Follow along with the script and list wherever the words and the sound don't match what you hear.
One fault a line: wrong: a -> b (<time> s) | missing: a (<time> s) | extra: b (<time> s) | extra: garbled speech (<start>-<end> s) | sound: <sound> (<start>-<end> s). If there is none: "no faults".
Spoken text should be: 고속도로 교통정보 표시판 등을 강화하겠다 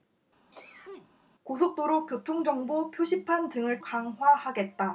sound: sneeze (0.5-1.2 s)